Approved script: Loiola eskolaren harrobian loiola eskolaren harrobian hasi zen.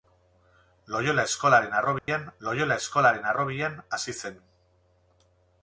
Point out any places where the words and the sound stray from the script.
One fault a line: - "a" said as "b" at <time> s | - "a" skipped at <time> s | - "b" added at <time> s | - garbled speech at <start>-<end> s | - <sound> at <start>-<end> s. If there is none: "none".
- dropout at 2.0-2.1 s